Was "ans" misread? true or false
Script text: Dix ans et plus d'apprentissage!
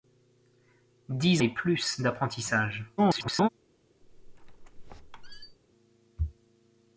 true